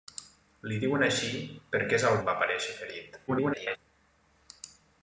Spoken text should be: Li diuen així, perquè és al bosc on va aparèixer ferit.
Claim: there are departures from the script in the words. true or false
true